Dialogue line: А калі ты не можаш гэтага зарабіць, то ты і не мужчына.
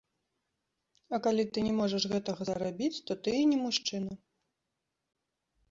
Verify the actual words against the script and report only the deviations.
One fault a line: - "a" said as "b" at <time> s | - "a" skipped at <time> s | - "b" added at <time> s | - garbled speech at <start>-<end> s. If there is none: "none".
none